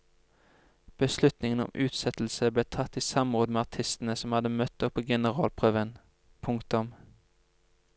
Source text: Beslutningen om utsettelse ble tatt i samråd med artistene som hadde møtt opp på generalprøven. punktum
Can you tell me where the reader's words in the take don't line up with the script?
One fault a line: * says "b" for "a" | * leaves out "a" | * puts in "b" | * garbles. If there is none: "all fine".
all fine